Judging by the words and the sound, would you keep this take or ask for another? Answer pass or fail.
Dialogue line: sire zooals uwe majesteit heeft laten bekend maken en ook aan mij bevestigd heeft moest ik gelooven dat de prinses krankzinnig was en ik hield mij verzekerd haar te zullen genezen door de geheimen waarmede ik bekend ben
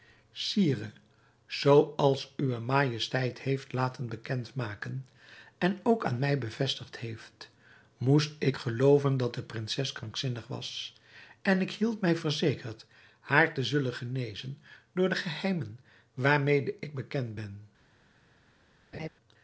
fail